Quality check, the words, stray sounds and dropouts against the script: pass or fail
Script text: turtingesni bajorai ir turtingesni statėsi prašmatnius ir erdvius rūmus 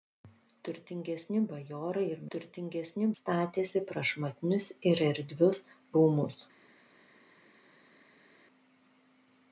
pass